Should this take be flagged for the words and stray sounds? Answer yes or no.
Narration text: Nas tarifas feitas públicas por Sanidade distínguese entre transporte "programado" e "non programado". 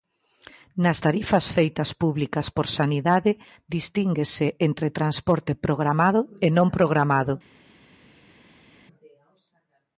no